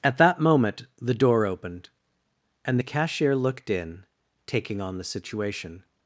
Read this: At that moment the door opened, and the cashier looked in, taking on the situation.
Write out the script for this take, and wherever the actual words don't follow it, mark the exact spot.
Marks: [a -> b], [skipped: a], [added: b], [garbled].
At that moment the door opened, and the cashier looked in, taking on the situation.